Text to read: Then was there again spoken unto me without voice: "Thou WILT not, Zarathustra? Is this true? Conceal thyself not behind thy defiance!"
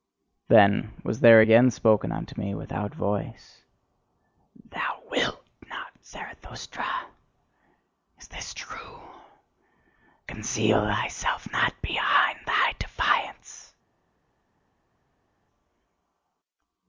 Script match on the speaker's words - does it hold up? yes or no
yes